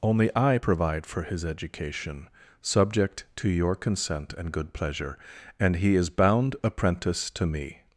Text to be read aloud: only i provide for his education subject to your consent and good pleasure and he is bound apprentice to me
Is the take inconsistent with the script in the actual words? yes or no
no